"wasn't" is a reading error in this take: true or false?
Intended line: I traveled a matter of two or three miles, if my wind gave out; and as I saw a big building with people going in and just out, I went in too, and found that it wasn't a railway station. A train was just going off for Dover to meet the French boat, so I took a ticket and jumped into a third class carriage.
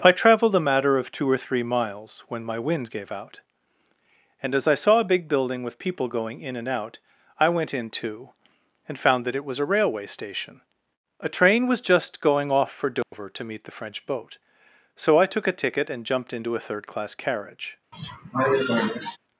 true